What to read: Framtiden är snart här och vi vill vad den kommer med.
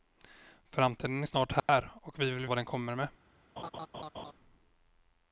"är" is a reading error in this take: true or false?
false